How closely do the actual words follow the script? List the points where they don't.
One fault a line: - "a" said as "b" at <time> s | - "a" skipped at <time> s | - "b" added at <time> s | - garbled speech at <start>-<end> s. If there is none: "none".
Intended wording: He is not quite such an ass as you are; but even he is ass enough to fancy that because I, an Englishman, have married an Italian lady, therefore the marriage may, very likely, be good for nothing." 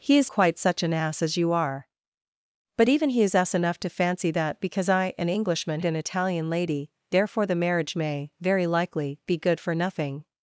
- "not" skipped at 0.3 s
- "have married" skipped at 5.8 s